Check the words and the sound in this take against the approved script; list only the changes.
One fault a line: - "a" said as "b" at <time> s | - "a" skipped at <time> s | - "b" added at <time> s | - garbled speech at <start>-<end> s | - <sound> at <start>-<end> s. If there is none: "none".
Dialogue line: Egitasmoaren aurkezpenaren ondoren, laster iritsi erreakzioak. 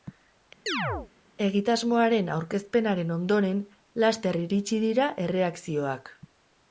- chirp at 0.7-1.1 s
- "dira" added at 4.9 s